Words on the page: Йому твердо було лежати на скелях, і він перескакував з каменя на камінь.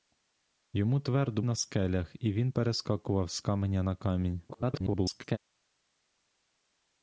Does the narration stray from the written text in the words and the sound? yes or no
yes